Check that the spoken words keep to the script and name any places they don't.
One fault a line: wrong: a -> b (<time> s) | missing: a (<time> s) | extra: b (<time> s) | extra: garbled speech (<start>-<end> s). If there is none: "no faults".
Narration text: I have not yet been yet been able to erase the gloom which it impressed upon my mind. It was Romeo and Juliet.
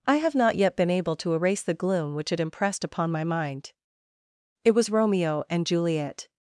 missing: yet been (0.9 s)